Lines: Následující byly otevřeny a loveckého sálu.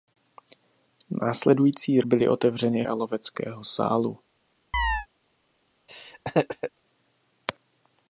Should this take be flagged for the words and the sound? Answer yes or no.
yes